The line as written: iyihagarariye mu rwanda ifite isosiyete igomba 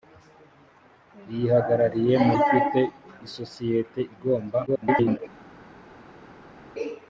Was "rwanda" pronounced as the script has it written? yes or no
no